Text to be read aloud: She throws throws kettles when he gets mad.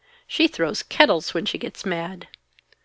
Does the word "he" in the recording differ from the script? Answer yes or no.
yes